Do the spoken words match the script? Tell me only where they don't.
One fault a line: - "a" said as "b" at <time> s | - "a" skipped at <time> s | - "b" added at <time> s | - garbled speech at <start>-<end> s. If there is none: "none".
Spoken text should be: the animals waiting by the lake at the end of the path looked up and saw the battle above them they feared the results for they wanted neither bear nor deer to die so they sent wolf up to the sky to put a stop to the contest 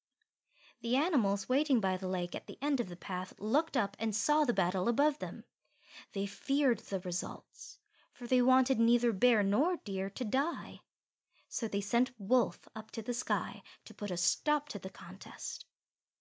none